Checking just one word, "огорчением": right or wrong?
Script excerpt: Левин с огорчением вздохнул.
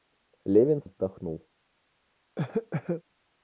wrong